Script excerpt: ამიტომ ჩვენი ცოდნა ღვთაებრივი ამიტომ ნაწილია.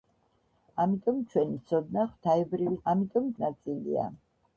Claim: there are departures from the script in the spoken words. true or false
false